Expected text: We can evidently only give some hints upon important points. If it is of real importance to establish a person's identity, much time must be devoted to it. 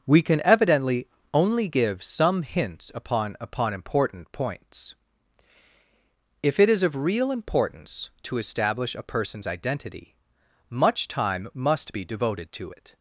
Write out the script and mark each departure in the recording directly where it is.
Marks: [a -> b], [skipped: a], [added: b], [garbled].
We can evidently only give some hints upon [added: upon] important points. If it is of real importance to establish a person's identity, much time must be devoted to it.